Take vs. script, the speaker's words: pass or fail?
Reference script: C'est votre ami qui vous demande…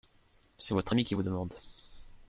pass